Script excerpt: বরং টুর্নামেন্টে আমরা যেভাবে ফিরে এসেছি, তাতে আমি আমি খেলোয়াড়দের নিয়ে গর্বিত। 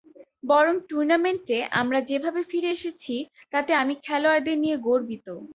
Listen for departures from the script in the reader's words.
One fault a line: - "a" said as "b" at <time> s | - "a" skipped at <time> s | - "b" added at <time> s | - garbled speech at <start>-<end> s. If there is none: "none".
- "আমি" skipped at 3.9 s